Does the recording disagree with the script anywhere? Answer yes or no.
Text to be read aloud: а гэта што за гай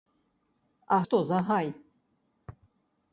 yes